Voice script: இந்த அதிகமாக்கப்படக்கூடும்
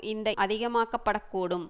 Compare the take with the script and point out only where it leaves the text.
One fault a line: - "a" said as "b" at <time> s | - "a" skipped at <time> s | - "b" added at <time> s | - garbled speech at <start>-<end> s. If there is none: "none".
none